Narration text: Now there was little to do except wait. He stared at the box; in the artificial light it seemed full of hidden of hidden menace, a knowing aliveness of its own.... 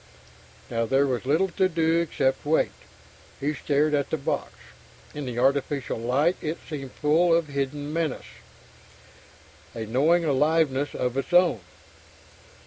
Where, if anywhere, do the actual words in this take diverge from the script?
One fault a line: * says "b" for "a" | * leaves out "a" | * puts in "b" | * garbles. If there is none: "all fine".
* leaves out "of hidden"